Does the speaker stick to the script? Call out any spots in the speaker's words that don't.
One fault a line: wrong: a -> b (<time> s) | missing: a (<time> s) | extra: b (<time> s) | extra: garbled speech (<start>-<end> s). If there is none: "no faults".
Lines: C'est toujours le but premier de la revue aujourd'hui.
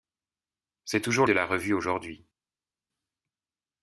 missing: le but premier (1.3 s)